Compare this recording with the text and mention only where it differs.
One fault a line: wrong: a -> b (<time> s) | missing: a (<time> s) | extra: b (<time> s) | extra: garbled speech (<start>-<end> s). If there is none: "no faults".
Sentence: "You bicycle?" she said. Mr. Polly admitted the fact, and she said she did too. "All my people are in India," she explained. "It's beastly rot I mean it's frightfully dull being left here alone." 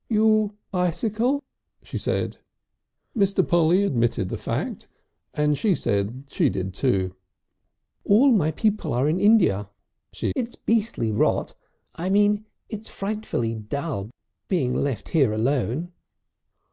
missing: explained (10.3 s)